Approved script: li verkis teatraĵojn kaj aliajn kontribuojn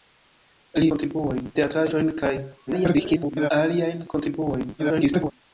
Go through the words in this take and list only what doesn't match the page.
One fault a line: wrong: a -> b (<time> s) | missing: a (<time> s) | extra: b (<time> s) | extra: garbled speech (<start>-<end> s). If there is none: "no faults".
wrong: verkis -> kontribuojn (0.9 s)
extra: garbled speech (2.7-3.5 s)
extra: garbled speech (4.8-5.3 s)